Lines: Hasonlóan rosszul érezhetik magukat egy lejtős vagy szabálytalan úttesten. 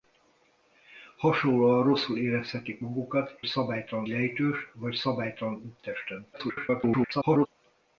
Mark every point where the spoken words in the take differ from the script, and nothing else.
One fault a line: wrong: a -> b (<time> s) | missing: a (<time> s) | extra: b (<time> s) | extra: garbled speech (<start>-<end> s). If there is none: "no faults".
wrong: egy -> szabálytalan (3.4 s)
extra: garbled speech (6.3-7.5 s)